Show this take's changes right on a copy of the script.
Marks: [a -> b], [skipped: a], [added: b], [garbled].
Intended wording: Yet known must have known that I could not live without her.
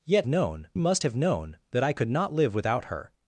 Yet known must have known that I could not live without her.